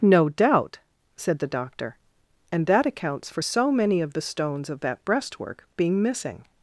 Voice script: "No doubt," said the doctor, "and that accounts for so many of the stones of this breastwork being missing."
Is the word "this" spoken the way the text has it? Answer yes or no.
no